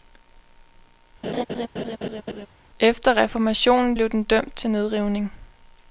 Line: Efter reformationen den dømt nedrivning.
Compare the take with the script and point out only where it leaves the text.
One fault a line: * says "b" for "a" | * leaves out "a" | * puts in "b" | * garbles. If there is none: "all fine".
* puts in "blev"
* puts in "til"